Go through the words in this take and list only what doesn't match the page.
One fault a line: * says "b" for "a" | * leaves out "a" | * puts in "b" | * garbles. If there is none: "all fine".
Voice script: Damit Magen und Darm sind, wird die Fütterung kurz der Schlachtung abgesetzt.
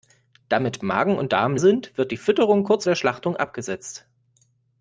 all fine